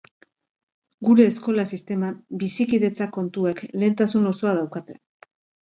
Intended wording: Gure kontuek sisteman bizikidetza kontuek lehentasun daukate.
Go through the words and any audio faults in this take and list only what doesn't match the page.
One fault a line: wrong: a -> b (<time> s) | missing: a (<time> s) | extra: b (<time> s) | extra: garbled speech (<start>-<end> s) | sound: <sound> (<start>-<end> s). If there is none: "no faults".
wrong: kontuek -> eskola (1.3 s)
extra: osoa (4.3 s)